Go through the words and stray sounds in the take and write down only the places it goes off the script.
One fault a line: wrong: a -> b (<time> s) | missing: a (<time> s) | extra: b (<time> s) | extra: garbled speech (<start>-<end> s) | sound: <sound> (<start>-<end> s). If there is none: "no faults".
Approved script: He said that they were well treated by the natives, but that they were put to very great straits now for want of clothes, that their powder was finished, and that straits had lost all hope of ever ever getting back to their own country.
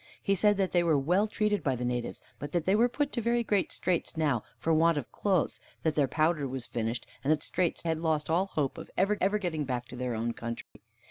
sound: dropout (10.6-10.8 s)